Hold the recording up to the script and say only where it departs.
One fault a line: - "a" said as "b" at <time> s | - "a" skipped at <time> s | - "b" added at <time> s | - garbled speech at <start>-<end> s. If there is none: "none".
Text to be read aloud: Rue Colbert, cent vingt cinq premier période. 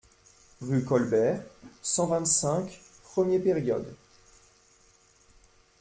none